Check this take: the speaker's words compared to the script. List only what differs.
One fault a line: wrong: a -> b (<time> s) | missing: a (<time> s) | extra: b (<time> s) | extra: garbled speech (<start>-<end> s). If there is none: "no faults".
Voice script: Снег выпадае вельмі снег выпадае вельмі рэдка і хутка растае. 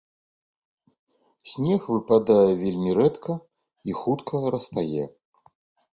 missing: снег выпадае вельмі (2.9 s)